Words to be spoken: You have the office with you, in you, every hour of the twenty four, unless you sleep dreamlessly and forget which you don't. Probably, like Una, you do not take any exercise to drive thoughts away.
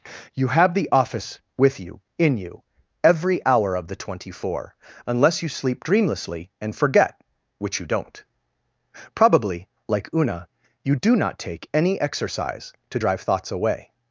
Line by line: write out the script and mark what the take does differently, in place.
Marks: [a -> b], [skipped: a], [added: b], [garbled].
You have the office with you, in you, every hour of the twenty four, unless you sleep dreamlessly and forget which you don't. Probably, like Una, you do not take any exercise to drive thoughts away.